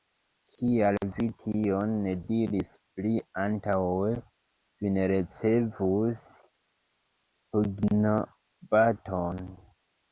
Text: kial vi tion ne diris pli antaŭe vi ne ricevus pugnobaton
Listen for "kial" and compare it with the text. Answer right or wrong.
right